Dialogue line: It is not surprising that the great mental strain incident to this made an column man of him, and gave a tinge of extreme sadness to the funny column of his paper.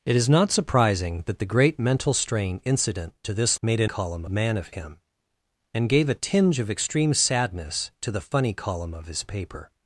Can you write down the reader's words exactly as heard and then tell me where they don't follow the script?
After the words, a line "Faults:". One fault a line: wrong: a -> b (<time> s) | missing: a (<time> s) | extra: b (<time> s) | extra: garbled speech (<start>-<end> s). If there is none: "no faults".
It is not surprising that the great mental strain incident to this made an column man of him, and gave a tinge of extreme sadness to the funny column of his paper.
Faults:
no faults